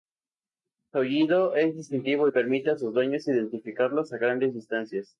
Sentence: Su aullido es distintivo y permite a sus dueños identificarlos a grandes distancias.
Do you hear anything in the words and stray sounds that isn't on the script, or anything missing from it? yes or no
no